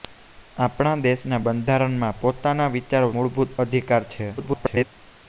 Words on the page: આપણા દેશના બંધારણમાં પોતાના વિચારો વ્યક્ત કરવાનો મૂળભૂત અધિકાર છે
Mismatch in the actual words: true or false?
true